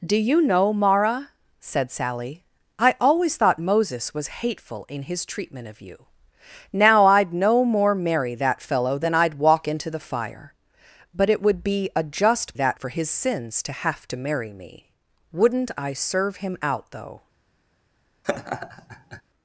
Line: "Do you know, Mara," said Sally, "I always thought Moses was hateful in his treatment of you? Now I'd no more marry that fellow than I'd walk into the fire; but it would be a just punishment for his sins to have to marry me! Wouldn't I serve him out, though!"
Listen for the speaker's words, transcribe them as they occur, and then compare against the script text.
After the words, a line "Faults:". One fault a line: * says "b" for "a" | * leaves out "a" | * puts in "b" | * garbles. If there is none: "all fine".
"Do you know, Mara," said Sally, "I always thought Moses was hateful in his treatment of you? Now I'd no more marry that fellow than I'd walk into the fire; but it would be a just that for his sins to have to marry me! Wouldn't I serve him out, though!"
Faults:
* says "that" for "punishment"